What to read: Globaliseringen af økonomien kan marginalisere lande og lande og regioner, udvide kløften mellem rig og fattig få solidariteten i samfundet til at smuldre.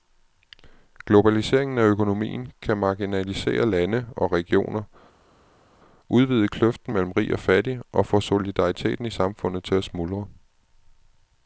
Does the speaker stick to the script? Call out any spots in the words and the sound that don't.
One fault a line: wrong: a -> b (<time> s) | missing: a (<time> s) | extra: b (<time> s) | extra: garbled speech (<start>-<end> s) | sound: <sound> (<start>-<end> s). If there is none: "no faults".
missing: lande og (4.3 s)
extra: og (7.9 s)